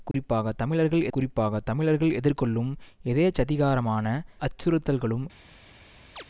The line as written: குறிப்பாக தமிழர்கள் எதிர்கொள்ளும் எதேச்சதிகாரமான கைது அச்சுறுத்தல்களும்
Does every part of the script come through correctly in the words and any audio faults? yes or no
no